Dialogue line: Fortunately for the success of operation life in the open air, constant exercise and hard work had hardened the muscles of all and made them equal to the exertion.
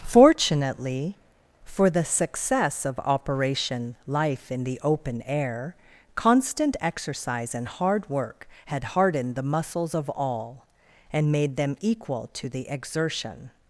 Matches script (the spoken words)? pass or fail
pass